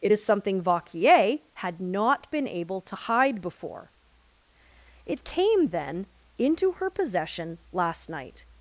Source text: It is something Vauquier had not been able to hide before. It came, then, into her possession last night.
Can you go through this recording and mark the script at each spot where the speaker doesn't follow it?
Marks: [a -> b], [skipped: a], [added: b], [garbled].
It is something Vauquier had not been able to hide before. It came, then, into her possession last night.